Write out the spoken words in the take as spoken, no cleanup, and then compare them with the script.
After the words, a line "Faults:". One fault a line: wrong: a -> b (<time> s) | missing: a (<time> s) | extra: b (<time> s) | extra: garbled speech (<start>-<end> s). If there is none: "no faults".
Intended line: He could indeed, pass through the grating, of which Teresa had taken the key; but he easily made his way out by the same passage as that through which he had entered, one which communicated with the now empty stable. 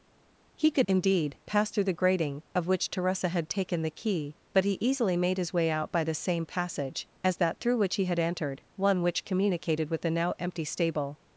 He could indeed, pass through the grating, of which Teresa had taken the key; but he easily made his way out by the same passage as that through which he had entered, one which communicated with the now empty stable.
Faults:
no faults